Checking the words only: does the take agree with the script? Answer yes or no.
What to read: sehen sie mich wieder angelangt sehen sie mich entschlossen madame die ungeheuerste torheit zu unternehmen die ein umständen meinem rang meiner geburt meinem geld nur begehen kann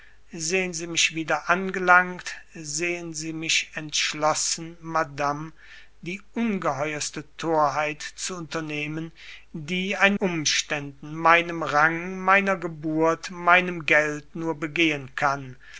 yes